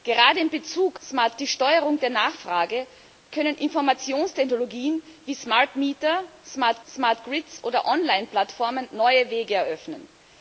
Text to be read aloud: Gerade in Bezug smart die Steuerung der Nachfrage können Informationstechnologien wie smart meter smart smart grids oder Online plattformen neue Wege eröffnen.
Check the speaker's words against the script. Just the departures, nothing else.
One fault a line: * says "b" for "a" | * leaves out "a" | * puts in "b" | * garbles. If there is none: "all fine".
all fine